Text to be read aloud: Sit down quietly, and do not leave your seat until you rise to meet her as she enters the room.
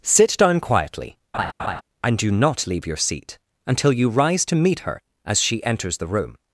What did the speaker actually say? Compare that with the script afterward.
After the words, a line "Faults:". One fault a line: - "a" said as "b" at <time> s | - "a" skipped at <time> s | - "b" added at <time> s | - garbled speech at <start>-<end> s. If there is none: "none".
Sit down quietly, and do not leave your seat until you rise to meet her as she enters the room.
Faults:
none